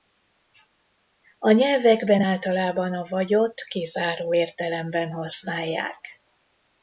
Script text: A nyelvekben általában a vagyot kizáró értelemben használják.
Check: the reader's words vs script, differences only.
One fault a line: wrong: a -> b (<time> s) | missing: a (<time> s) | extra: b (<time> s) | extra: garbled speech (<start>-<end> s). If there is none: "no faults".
no faults